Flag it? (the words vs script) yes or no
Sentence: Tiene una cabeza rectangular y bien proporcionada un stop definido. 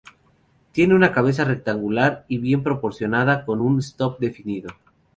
yes